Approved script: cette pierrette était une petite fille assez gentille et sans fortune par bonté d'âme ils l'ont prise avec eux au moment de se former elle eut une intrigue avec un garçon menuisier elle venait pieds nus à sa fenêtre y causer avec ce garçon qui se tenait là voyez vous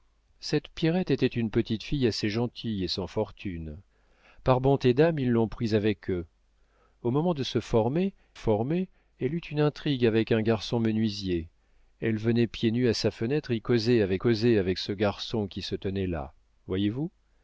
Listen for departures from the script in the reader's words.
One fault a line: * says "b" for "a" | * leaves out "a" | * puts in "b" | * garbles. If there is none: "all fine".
* puts in "former"
* puts in "causer avec"